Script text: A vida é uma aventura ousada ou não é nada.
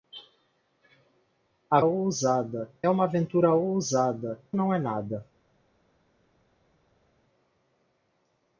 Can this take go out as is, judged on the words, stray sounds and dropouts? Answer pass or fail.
fail